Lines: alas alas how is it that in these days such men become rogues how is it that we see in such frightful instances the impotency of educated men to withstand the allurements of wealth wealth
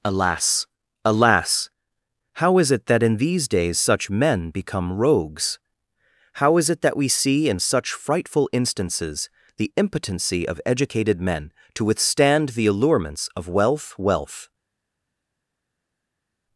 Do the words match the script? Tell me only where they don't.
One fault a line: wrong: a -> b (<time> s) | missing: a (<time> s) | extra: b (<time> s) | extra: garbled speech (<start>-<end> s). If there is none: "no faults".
no faults